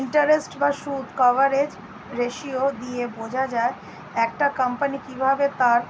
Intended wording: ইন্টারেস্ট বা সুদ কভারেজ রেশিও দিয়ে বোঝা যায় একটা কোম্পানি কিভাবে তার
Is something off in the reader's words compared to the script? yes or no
no